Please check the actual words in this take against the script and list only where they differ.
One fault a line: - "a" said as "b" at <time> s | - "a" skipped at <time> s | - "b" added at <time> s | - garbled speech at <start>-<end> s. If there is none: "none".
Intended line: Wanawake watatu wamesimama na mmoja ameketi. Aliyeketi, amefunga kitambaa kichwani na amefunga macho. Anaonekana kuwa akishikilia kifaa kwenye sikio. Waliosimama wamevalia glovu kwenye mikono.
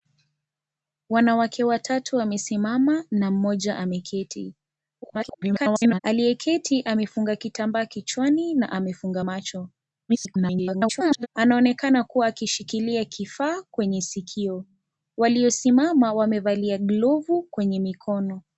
- garbled speech at 5.0-6.0 s
- garbled speech at 10.1-11.3 s